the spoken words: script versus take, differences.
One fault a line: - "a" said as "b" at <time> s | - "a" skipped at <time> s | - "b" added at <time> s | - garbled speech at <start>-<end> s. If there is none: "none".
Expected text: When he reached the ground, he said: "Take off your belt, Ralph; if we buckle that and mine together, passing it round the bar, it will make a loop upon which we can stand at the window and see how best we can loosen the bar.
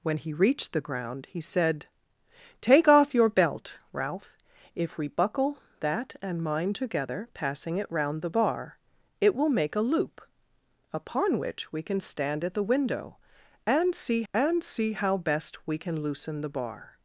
- "and see" added at 14.3 s